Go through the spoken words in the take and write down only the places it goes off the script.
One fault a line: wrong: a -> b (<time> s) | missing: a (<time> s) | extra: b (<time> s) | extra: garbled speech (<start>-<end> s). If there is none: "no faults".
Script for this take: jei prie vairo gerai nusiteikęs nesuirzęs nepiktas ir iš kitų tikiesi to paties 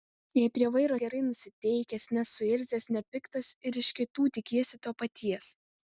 no faults